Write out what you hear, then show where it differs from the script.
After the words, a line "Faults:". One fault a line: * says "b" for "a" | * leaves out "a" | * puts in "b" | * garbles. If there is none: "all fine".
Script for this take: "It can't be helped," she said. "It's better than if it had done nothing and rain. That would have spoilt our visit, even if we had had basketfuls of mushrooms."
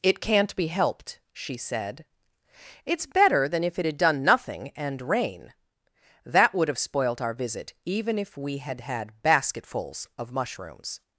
"It can't be helped," she said. "It's better than if it had done nothing and rain. That would have spoilt our visit, even if we had had basketfuls of mushrooms."
Faults:
all fine